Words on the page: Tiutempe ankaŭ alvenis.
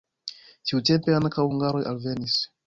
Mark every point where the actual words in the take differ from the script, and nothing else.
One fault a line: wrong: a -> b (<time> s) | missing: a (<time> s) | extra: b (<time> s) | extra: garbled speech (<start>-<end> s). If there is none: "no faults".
extra: hungaroj (1.5 s)